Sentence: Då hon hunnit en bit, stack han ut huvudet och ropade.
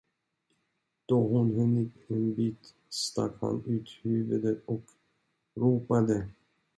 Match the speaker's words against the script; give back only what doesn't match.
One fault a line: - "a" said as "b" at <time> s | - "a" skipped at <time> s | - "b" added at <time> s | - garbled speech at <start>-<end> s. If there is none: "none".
none